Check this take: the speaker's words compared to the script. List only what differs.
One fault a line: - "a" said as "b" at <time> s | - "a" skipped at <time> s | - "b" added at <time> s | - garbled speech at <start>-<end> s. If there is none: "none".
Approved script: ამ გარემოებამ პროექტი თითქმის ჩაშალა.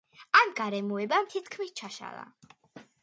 - "პროექტი" skipped at 1.3 s